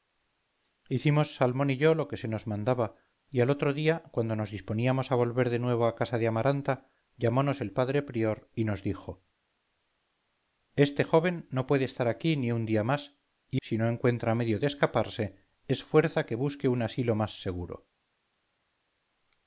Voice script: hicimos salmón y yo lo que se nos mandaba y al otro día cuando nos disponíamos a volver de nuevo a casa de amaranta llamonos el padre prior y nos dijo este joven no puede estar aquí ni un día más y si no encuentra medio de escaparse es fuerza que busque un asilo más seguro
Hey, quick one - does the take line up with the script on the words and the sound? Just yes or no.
yes